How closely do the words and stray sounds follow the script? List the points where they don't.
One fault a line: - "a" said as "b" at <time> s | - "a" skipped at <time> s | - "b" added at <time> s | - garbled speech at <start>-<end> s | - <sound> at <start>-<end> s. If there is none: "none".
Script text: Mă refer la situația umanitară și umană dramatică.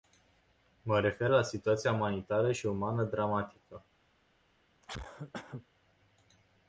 - cough at 4.8-5.7 s